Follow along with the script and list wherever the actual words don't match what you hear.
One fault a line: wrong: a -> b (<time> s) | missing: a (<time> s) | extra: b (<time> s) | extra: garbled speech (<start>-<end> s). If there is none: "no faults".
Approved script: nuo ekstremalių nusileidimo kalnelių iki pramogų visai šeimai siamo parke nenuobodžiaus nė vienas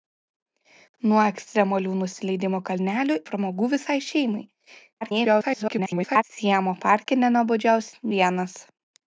missing: iki (3.2 s)
extra: garbled speech (5.0-6.2 s)
missing: nė (7.9 s)